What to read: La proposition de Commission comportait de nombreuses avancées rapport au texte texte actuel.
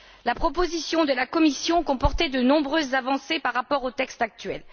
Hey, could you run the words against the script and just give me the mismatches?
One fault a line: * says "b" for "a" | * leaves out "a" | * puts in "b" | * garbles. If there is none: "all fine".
* puts in "la"
* puts in "par"
* leaves out "texte"